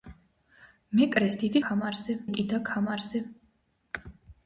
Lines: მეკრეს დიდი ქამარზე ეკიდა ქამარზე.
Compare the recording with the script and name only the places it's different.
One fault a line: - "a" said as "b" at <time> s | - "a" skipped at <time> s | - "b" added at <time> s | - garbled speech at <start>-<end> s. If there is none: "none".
none